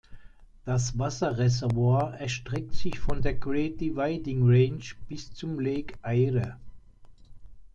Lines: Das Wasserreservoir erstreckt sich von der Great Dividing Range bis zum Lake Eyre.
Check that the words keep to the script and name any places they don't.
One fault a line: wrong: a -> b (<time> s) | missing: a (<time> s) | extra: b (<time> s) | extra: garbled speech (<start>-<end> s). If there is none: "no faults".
no faults